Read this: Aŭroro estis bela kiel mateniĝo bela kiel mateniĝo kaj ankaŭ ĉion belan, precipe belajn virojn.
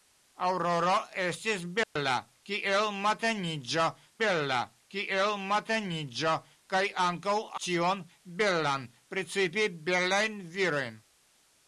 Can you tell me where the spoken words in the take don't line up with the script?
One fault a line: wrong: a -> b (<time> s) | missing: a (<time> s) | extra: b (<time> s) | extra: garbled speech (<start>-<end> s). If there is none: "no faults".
no faults